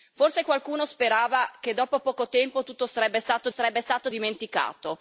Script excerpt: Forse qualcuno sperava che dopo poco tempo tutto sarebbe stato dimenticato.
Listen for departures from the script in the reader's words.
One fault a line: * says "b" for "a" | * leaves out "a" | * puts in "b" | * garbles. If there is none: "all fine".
* puts in "sarebbe stato"